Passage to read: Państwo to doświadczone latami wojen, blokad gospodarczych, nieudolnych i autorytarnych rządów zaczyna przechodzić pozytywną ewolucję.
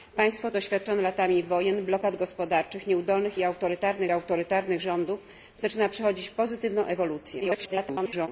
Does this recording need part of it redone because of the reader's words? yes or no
yes